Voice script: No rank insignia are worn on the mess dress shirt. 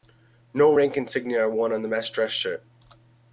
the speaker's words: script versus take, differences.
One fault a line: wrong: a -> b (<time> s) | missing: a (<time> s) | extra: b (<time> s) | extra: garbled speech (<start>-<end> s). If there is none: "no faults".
no faults